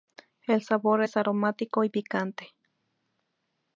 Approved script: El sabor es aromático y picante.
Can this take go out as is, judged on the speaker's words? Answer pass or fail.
pass